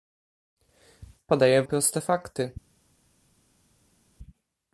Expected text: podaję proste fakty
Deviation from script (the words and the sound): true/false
false